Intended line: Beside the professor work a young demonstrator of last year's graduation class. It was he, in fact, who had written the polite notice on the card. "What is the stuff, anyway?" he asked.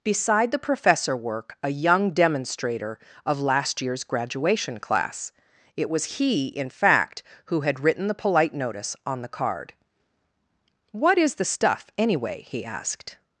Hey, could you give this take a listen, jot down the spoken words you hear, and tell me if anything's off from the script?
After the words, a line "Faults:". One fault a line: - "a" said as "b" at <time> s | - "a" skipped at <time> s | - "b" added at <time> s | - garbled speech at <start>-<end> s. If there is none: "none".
Beside the professor work a young demonstrator of last year's graduation class. It was he, in fact, who had written the polite notice on the card. "What is the stuff, anyway?" he asked.
Faults:
none